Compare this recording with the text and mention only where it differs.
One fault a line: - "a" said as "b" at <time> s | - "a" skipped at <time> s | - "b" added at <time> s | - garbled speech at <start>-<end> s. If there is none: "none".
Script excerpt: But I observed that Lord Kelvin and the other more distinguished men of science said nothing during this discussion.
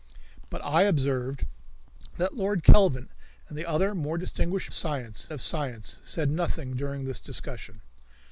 - "men" said as "science" at 4.7 s